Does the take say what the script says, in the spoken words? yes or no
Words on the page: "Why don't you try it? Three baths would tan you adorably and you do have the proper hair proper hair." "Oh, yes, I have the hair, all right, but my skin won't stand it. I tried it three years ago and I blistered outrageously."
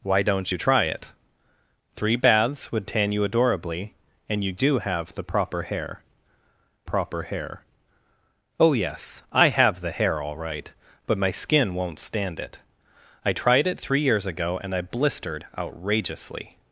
yes